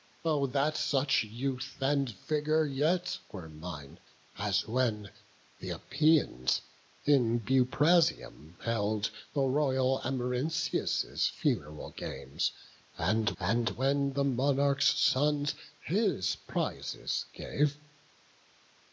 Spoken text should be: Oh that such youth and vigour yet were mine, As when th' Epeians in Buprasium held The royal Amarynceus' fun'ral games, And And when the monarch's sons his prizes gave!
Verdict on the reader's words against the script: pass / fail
pass